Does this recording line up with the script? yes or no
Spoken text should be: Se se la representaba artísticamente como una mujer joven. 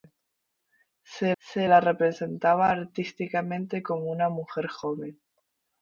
yes